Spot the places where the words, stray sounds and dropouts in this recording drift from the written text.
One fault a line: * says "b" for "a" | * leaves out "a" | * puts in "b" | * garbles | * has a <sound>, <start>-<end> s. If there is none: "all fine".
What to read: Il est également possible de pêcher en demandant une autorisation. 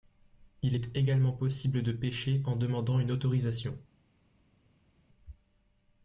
all fine